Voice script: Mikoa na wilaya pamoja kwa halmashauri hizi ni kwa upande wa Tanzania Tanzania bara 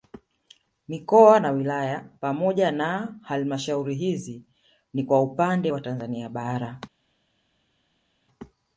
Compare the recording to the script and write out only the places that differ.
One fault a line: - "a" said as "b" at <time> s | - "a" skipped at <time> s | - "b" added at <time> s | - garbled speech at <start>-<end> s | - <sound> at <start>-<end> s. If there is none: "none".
- "kwa" said as "na" at 2.7 s
- "Tanzania" skipped at 6.3 s